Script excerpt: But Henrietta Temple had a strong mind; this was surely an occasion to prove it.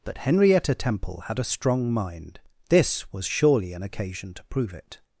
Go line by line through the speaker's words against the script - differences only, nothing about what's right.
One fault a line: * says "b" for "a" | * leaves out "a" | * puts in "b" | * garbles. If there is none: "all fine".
all fine